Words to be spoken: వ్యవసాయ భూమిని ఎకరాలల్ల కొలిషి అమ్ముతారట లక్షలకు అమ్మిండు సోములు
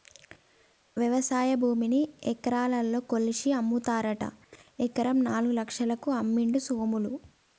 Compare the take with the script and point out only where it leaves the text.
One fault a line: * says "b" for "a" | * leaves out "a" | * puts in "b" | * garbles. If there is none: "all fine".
* puts in "ఎకరం నాలుగు"